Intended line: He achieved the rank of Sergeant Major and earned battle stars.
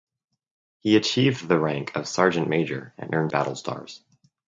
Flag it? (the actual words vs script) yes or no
no